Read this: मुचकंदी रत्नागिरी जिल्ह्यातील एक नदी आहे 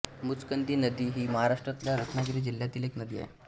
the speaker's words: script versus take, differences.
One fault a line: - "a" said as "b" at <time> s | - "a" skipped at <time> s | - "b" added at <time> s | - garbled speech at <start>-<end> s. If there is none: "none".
- "नदी ही महाराष्ट्रातल्या" added at 0.8 s